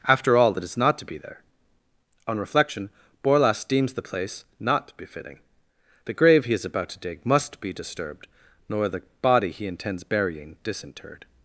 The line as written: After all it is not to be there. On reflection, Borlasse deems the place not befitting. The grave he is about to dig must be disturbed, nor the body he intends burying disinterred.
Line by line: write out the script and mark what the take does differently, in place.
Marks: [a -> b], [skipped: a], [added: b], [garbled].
After all it is not to be there. On reflection, Borlasse deems the place not befitting. The grave he is about to dig must be disturbed, nor the body he intends burying disinterred.